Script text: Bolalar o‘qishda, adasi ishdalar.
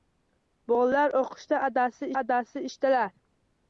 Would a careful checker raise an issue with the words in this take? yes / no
yes